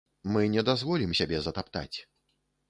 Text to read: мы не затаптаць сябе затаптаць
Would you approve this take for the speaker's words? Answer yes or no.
no